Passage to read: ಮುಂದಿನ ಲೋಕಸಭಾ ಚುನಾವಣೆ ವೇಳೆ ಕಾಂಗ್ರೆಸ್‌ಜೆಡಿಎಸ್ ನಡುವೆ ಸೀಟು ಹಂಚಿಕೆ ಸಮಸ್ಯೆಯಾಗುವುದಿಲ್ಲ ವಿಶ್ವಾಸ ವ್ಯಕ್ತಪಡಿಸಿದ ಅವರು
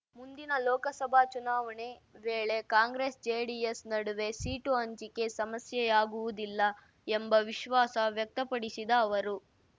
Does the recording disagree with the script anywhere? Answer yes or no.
yes